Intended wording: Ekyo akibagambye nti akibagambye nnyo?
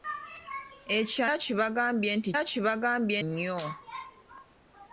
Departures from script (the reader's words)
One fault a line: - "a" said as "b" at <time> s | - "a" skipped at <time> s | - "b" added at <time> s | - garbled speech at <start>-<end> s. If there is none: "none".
none